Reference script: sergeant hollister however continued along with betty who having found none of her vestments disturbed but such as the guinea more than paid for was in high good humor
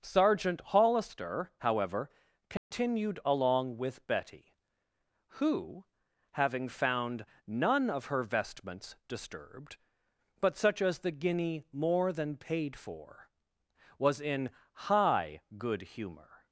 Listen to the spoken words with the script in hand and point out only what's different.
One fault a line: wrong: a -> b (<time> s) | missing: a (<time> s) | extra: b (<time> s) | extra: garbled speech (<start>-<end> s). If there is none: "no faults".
no faults